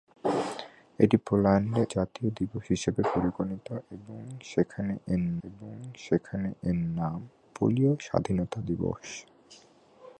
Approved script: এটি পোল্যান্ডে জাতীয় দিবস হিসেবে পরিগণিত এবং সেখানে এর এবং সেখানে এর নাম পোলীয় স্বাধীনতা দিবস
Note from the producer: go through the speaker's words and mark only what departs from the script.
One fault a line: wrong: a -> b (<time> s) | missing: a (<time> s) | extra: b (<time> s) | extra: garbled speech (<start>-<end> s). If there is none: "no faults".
no faults